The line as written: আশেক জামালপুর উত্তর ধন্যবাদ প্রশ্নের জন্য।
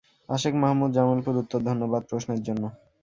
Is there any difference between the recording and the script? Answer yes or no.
yes